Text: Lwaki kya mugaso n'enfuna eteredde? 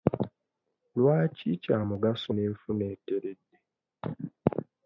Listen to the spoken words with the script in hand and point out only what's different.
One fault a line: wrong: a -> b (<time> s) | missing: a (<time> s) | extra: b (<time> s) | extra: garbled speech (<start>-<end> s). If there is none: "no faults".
no faults